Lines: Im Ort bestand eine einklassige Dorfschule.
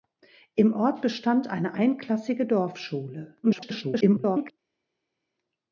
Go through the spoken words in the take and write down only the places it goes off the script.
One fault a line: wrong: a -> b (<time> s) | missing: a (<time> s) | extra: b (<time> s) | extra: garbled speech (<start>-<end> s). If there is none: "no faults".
extra: garbled speech (3.4-4.5 s)